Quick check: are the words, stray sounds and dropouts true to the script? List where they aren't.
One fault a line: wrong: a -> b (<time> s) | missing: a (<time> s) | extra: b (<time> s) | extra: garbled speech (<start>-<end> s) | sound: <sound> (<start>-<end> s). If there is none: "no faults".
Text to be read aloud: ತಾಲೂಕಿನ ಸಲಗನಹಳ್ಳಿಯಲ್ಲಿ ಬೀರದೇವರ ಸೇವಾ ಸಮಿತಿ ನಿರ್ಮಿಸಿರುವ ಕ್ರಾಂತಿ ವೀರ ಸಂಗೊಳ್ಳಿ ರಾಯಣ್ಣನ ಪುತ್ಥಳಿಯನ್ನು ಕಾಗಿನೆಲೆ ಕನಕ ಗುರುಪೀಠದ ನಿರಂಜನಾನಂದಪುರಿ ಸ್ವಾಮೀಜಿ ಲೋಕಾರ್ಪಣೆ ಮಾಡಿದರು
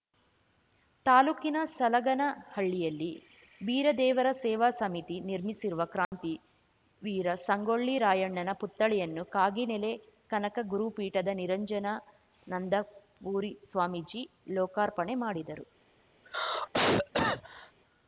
sound: dropout (6.0-6.1 s)
sound: cough (16.2-17.7 s)